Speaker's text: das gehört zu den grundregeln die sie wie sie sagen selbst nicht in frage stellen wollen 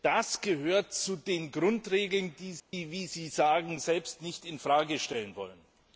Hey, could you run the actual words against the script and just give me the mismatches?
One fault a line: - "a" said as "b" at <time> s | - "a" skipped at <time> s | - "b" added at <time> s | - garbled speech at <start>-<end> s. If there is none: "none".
none